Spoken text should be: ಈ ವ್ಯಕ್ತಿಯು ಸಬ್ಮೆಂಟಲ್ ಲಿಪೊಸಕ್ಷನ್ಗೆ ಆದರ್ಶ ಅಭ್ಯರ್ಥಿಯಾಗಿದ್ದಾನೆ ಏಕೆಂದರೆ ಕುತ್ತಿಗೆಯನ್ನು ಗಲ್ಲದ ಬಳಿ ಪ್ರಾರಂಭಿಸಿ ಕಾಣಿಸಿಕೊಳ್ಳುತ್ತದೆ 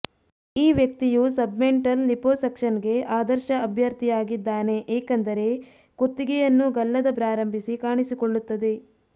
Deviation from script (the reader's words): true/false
true